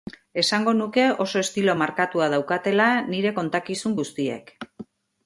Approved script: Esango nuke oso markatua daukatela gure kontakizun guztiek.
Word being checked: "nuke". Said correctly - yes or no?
yes